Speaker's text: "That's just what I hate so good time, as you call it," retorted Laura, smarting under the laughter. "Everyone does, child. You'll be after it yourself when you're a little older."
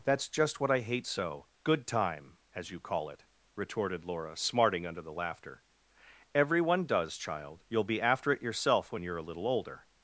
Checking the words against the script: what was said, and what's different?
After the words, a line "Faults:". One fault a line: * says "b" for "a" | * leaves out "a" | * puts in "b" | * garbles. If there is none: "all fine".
"That's just what I hate so good time, as you call it," retorted Laura, smarting under the laughter. "Everyone does, child. You'll be after it yourself when you're a little older."
Faults:
all fine